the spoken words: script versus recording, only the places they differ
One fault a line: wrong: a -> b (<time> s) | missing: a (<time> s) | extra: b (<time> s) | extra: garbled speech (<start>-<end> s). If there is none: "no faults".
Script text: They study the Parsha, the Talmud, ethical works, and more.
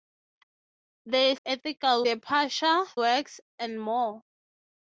wrong: study -> ethical (1.4 s)
missing: the Talmud ethical (2.9 s)